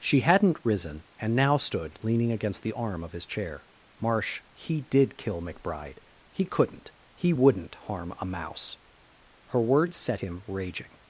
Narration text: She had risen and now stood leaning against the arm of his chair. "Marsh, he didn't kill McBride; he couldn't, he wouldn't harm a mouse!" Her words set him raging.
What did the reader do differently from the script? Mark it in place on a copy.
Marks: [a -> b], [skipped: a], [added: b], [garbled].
She [had -> hadn't] risen and now stood leaning against the arm of his chair. "Marsh, he [didn't -> did] kill McBride; he couldn't, he wouldn't harm a mouse!" Her words set him raging.